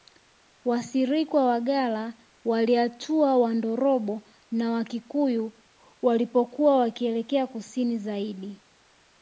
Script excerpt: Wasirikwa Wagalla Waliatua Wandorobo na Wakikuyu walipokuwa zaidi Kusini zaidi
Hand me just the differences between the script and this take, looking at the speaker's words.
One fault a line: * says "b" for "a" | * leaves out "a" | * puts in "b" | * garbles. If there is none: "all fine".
* says "wakielekea" for "zaidi"